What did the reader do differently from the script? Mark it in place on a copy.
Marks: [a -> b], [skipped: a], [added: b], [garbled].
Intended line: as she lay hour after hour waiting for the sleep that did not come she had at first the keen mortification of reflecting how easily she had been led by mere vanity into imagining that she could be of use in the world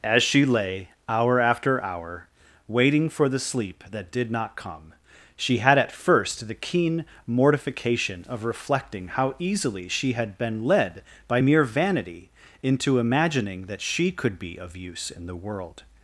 as she lay hour after hour waiting for the sleep that did not come she had at first the keen mortification of reflecting how easily she had been led by mere vanity into imagining that she could be of use in the world